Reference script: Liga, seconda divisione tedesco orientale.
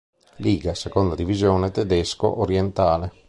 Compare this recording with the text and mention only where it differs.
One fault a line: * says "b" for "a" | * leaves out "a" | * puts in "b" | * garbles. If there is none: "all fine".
all fine